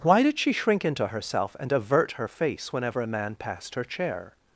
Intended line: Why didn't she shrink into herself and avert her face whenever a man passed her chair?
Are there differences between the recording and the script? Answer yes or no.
yes